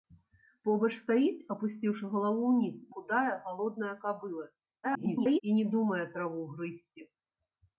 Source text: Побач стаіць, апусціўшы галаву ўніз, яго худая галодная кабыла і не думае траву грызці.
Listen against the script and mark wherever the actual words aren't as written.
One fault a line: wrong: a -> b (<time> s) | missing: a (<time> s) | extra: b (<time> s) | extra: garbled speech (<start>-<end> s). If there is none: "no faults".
missing: яго (2.8 s)
extra: garbled speech (4.8-5.4 s)